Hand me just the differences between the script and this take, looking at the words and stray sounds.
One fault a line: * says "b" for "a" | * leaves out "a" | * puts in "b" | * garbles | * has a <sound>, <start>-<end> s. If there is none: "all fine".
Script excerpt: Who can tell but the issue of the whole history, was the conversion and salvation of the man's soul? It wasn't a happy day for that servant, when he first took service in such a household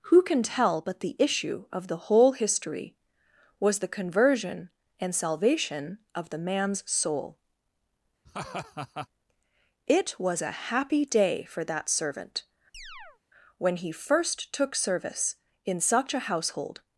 * has a laugh, 8.3-9.1 s
* says "was" for "wasn't"
* has a chirp, 12.7-13.2 s